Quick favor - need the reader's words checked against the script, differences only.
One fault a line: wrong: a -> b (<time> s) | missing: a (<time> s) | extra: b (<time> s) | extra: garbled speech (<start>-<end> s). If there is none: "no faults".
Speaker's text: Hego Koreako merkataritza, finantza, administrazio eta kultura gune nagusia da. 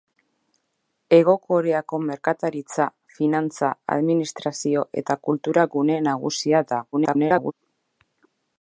extra: garbled speech (6.9-7.5 s)